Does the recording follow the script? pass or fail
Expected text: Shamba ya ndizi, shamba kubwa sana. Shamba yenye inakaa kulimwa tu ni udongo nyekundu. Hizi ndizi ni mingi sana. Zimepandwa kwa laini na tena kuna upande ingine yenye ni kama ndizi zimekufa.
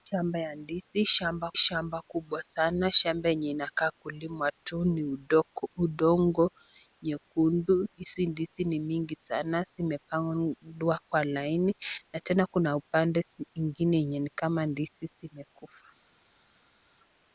fail